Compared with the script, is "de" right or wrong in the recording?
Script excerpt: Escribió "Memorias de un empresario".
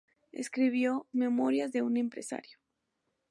right